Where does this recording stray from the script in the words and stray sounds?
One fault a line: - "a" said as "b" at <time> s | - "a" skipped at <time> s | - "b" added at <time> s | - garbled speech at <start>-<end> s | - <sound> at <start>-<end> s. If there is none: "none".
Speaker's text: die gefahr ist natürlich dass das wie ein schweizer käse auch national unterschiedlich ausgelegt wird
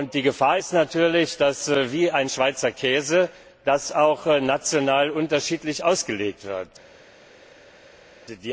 none